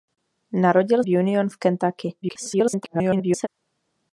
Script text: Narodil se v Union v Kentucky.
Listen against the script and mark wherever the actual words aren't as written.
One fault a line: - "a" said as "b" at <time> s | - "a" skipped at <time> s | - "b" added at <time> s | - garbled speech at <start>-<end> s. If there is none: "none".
- "se" skipped at 1.0 s
- garbled speech at 2.2-3.5 s